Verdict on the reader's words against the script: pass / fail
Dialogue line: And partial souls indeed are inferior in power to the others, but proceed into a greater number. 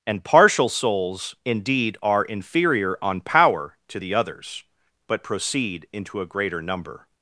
fail